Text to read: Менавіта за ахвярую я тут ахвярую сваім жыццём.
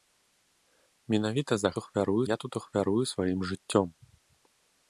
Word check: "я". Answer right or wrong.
right